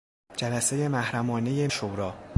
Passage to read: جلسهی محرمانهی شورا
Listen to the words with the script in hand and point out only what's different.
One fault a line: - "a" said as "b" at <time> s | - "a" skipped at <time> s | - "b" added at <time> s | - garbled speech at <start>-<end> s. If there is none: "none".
none